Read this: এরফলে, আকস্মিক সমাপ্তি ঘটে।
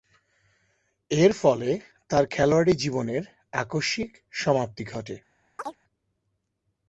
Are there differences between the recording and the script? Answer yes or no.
yes